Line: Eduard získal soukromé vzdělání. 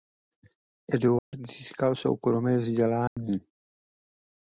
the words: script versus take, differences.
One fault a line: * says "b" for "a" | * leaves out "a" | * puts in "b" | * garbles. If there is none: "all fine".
all fine